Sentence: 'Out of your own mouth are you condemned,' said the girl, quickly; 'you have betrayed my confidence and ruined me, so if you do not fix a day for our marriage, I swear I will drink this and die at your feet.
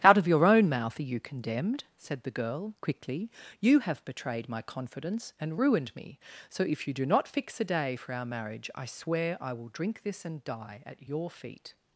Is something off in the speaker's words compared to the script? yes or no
no